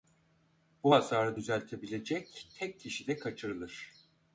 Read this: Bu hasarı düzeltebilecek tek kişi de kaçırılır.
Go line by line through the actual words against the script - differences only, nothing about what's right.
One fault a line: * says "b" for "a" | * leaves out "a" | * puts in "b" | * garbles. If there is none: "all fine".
all fine